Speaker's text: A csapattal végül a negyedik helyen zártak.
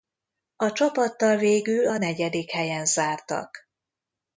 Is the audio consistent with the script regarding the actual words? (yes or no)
yes